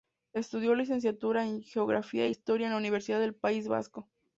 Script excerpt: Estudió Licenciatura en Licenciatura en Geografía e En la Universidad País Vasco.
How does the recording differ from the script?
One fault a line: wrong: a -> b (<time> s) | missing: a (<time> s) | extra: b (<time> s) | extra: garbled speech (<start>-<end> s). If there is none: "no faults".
missing: Licenciatura en (1.6 s)
extra: Historia (2.3 s)
extra: del (3.2 s)